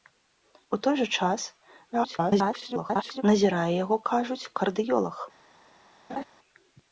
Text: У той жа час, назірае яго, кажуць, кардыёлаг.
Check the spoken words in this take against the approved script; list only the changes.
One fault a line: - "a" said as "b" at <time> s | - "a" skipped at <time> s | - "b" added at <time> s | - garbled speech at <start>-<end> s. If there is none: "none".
- garbled speech at 1.9-3.2 s